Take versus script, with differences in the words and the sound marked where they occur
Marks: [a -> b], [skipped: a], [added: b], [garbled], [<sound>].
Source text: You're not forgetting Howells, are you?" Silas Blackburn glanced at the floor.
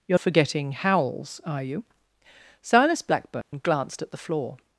You're [skipped: not] forgetting Howells, are you?" Silas Blackburn [dropout] glanced at the floor.